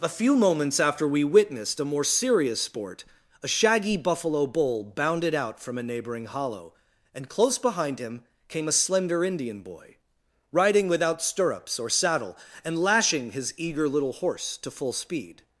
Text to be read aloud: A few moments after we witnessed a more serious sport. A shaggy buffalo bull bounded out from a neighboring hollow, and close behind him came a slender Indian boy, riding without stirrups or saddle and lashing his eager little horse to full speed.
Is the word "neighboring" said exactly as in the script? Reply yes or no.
yes